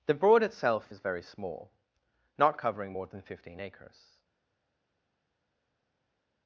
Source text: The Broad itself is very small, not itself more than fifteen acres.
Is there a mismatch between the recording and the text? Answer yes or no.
yes